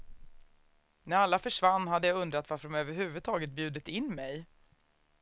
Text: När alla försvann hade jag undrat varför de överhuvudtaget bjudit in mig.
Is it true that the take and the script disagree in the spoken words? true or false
false